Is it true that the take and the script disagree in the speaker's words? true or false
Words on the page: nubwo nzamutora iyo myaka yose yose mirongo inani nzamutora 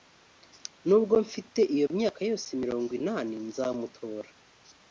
true